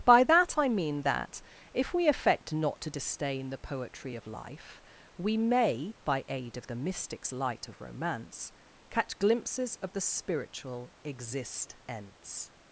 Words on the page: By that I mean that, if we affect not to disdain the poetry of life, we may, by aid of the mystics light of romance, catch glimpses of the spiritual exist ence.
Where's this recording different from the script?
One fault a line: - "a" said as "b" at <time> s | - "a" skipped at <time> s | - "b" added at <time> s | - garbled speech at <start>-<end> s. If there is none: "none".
none